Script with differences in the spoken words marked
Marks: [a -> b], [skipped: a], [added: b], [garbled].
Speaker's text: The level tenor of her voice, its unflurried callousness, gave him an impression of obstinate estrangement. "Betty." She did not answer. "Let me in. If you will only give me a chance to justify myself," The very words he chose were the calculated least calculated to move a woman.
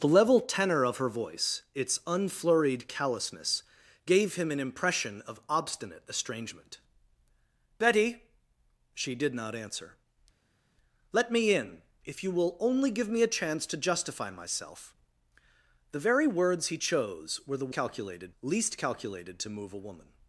The level tenor of her voice, its unflurried callousness, gave him an impression of obstinate estrangement. "Betty." She did not answer. "Let me in. If you will only give me a chance to justify myself," The very words he chose were the calculated least calculated to move a woman.